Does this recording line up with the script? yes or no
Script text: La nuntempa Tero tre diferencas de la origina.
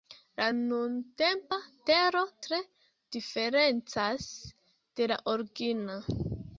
yes